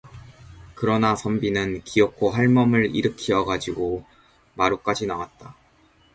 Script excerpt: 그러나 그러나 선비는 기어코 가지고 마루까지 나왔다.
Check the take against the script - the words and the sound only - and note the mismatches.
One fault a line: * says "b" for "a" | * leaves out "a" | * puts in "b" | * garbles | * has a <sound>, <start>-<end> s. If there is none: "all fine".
* leaves out "그러나"
* puts in "할멈을 일으키어"